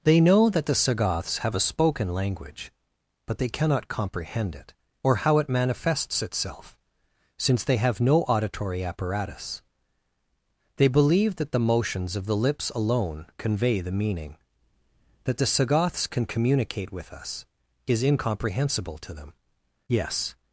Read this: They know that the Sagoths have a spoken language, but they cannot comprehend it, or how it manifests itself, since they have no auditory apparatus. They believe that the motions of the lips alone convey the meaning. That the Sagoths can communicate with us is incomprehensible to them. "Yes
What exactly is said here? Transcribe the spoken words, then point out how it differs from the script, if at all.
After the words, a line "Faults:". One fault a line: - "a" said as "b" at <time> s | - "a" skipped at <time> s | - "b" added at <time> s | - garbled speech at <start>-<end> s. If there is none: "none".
They know that the Sagoths have a spoken language, but they cannot comprehend it, or how it manifests itself, since they have no auditory apparatus. They believe that the motions of the lips alone convey the meaning. That the Sagoths can communicate with us is incomprehensible to them. "Yes
Faults:
none